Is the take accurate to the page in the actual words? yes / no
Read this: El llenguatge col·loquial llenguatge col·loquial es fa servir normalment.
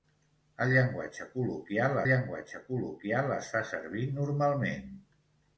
yes